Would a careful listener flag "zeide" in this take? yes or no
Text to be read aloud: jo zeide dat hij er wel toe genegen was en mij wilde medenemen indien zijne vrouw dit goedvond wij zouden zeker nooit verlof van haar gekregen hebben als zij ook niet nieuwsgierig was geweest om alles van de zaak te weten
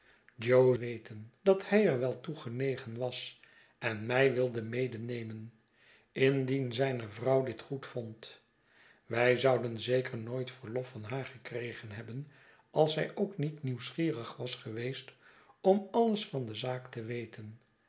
yes